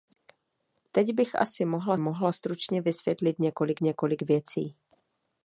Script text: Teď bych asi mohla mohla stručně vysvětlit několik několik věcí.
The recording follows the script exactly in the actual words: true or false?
true